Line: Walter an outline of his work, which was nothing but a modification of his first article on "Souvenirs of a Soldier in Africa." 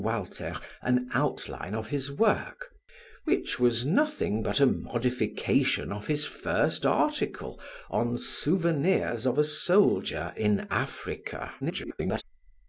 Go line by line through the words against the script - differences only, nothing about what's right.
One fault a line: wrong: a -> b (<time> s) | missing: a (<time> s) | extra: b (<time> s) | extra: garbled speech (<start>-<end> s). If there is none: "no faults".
extra: garbled speech (11.6-12.2 s)